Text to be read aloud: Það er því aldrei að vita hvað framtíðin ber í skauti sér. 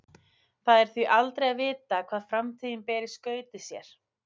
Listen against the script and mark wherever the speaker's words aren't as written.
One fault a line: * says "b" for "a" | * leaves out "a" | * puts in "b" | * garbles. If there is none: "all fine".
all fine